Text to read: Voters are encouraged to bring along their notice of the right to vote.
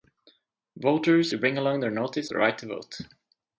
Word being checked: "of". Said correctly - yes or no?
no